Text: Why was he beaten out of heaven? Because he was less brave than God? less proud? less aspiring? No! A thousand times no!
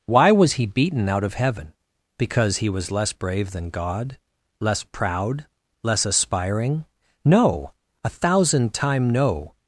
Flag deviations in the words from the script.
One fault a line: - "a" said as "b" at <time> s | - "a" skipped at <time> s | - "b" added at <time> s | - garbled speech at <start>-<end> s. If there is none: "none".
- "times" said as "time" at 8.7 s